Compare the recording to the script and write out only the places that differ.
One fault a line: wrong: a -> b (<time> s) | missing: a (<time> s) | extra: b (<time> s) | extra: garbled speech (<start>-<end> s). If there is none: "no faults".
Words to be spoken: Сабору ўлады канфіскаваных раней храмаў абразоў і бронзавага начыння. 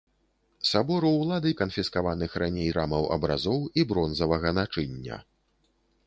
no faults